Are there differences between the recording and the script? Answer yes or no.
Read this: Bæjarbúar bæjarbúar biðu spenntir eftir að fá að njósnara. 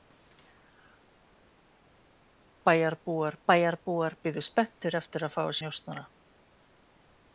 no